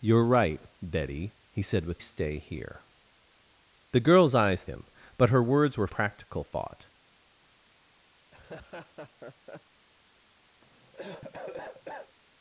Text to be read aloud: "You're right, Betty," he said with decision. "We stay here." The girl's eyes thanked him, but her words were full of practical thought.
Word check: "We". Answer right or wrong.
wrong